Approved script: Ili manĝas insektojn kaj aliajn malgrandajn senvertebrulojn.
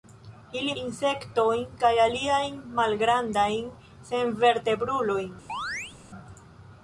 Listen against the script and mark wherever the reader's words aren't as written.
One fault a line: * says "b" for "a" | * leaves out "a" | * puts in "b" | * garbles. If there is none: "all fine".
* leaves out "manĝas"